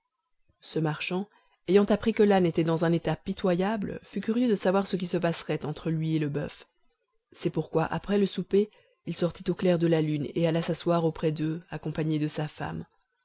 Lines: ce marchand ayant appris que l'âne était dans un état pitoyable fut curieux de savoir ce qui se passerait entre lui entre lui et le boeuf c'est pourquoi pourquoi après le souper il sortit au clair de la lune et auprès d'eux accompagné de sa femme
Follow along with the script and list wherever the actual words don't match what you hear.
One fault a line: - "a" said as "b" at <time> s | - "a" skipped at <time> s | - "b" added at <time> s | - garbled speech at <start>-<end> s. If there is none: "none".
- "entre lui" skipped at 6.2 s
- "pourquoi" skipped at 7.8 s
- "alla s'asseoir" added at 10.5 s